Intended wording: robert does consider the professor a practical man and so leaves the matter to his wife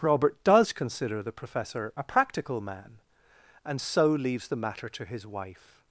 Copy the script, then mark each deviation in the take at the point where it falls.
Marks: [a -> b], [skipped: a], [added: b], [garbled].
robert does consider the professor a practical man and so leaves the matter to his wife